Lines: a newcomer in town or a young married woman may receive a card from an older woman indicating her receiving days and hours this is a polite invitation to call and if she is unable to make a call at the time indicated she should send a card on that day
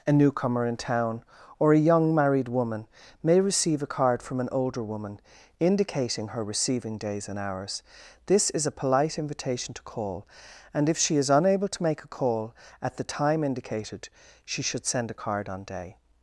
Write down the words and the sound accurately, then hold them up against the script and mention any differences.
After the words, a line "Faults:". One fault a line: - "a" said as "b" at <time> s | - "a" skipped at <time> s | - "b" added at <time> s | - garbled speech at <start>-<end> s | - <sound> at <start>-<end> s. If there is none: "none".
a newcomer in town or a young married woman may receive a card from an older woman indicating her receiving days and hours this is a polite invitation to call and if she is unable to make a call at the time indicated she should send a card on day
Faults:
- "that" skipped at 15.6 s